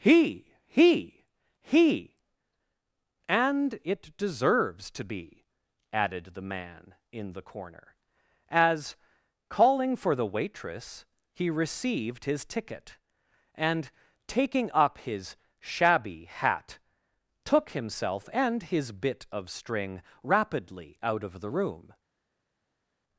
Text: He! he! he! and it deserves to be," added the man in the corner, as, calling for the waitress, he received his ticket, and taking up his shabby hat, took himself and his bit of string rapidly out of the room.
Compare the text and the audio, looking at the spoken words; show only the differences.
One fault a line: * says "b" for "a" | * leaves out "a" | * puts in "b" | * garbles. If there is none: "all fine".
all fine